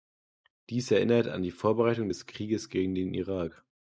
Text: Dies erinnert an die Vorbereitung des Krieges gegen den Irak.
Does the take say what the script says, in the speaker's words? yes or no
yes